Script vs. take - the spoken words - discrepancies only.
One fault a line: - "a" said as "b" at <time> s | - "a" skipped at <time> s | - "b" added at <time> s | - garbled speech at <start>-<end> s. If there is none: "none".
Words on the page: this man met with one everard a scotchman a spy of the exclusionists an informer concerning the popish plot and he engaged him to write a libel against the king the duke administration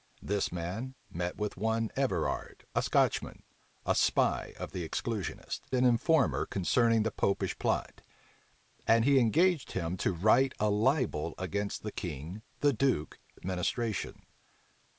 none